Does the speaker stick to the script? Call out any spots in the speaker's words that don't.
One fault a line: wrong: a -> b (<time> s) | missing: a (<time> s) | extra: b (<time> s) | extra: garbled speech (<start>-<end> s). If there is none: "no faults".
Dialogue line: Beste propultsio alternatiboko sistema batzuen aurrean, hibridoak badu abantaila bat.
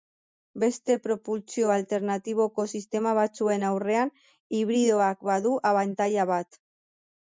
no faults